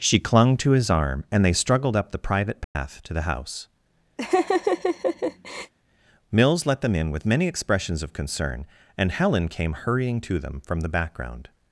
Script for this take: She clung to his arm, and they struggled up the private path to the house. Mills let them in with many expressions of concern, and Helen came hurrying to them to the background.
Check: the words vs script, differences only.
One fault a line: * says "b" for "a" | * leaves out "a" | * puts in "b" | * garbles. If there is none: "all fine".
* says "from" for "to"